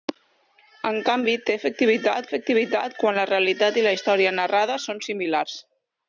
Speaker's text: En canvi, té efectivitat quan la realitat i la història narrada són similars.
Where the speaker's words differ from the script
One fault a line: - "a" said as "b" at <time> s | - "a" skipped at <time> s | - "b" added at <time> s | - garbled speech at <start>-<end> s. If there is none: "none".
- "efectivitat" added at 2.3 s